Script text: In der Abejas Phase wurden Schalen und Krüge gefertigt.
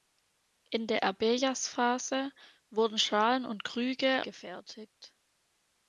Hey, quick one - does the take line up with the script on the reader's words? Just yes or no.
yes